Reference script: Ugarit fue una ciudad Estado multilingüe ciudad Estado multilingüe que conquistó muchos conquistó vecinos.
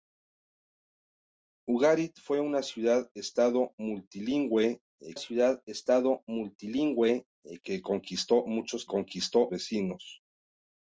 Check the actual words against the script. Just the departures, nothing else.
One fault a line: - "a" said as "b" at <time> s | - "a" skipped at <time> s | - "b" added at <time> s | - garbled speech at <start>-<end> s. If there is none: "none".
none